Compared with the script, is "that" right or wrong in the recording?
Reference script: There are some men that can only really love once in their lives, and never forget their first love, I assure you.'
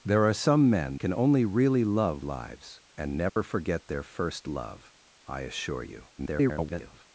wrong